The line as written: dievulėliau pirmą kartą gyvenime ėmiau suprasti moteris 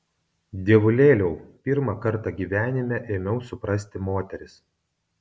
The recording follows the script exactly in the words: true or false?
true